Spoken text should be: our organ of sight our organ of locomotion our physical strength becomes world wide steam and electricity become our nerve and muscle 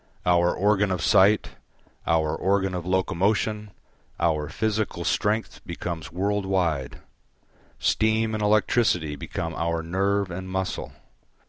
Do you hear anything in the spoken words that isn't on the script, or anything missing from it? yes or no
no